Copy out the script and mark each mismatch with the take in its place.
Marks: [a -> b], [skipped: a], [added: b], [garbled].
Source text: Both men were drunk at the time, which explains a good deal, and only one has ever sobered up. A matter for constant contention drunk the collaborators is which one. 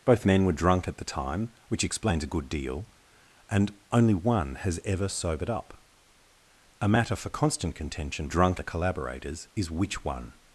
Both men were drunk at the time, which explains a good deal, and only one has ever sobered up. A matter for constant contention drunk the collaborators is which one.